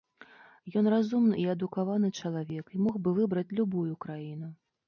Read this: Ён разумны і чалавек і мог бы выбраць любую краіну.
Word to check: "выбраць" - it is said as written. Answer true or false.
true